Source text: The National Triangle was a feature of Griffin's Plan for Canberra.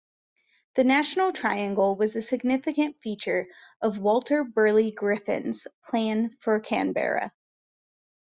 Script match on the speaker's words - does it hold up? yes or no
no